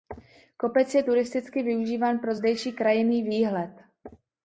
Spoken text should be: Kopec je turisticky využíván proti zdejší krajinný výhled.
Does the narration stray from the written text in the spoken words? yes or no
yes